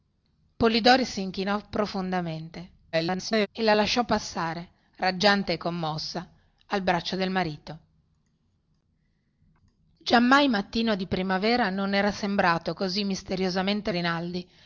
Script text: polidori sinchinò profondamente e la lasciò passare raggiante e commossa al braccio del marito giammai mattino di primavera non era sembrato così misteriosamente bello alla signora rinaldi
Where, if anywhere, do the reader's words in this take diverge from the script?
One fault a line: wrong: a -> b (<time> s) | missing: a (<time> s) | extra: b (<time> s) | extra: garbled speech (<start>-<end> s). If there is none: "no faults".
extra: garbled speech (2.9-3.5 s)
missing: bello alla signora (13.9 s)